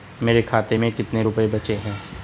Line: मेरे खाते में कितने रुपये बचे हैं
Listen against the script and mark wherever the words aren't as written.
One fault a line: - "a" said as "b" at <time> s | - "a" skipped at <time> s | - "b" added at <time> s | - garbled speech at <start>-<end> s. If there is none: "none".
none